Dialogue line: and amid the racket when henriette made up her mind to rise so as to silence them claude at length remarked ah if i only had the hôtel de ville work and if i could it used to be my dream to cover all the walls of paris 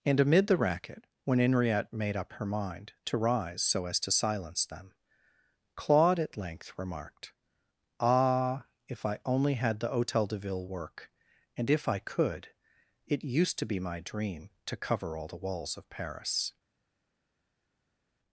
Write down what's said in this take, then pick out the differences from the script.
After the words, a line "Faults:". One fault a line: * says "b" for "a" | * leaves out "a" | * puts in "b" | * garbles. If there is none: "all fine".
and amid the racket when henriette made up her mind to rise so as to silence them claude at length remarked ah if i only had the hôtel de ville work and if i could it used to be my dream to cover all the walls of paris
Faults:
all fine